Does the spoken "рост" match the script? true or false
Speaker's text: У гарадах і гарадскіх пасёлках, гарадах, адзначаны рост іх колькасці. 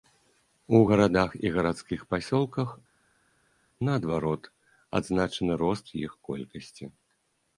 true